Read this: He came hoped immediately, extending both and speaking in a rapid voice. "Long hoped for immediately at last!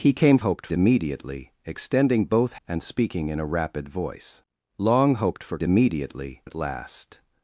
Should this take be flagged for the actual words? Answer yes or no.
no